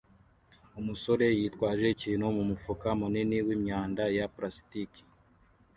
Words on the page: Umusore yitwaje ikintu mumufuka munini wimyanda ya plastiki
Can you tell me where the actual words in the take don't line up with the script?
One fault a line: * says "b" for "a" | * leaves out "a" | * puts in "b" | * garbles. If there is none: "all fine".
all fine